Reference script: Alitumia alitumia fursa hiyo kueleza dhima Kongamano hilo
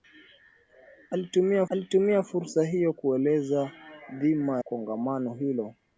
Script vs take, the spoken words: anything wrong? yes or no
no